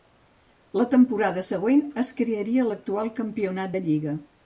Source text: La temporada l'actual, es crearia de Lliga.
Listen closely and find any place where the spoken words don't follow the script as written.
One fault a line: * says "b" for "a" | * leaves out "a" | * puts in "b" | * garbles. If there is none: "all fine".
* says "següent" for "l'actual"
* puts in "l'actual Campionat"